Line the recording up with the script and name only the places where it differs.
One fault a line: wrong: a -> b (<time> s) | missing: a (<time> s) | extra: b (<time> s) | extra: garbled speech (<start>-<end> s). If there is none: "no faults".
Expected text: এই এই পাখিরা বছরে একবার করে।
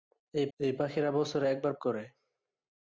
no faults